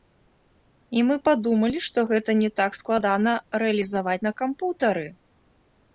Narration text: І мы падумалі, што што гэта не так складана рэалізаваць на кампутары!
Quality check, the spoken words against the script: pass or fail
fail